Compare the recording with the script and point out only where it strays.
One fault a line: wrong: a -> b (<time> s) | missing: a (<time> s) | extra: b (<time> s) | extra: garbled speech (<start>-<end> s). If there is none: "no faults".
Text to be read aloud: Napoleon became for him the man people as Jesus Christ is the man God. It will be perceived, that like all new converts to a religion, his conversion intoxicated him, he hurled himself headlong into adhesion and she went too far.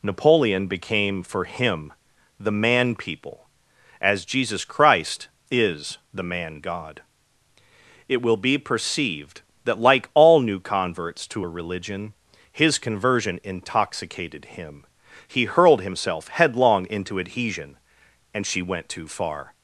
no faults